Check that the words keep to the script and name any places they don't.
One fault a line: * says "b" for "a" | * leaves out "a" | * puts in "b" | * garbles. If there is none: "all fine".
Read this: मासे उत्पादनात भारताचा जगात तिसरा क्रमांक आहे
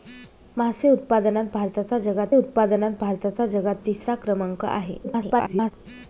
* puts in "उत्पादनात भारताचा जगात"
* garbles